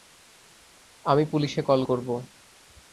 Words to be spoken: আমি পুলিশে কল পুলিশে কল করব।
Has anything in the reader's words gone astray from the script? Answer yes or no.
yes